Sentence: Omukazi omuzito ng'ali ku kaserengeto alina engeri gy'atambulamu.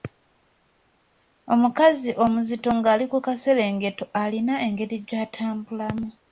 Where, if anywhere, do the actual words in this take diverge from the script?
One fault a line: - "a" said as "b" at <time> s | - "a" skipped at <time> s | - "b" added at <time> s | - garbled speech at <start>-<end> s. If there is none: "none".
none